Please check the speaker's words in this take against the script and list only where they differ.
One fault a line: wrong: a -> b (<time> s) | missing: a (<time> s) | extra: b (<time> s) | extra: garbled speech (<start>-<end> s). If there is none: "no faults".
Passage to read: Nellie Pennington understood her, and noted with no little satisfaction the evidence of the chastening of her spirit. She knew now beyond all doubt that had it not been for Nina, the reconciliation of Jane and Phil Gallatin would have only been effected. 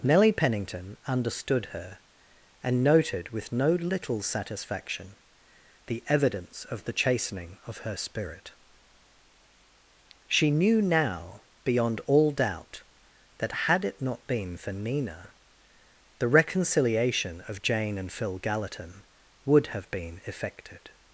missing: only (19.9 s)